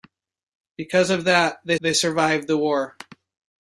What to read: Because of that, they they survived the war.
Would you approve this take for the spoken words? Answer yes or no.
yes